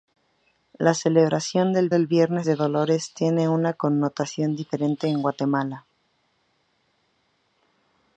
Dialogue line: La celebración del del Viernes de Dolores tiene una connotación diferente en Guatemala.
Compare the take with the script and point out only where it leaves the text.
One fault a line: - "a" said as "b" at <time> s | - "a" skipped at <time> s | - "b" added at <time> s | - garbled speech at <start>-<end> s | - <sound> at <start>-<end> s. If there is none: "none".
none